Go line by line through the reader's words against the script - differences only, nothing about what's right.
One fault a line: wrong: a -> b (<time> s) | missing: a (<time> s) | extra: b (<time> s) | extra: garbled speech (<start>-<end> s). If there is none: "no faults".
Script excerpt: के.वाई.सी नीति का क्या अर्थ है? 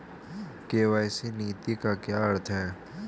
no faults